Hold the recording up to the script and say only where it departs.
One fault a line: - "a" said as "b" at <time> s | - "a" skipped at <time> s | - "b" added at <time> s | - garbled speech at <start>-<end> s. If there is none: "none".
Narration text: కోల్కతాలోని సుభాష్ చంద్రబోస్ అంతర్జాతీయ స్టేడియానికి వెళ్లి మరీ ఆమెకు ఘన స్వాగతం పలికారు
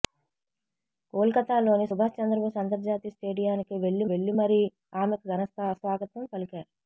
- "వెళ్లి" added at 4.1 s